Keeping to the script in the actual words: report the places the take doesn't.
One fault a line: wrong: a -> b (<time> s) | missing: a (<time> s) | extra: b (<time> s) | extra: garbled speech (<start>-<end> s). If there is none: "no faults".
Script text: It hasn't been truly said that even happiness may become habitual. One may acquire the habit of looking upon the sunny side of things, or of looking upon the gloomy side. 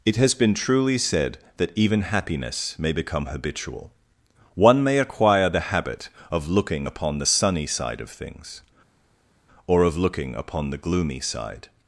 wrong: hasn't -> has (0.1 s)